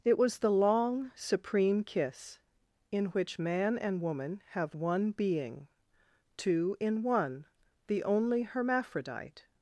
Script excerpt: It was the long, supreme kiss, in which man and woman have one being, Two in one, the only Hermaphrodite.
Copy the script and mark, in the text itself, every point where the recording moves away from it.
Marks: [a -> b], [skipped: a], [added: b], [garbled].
It was the long, supreme kiss, in which man and woman have one being, Two in one, the only Hermaphrodite.